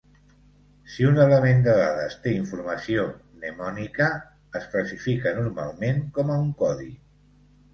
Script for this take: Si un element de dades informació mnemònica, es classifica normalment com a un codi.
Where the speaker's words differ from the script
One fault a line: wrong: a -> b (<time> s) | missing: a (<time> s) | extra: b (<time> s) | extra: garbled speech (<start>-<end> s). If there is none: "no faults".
extra: té (2.2 s)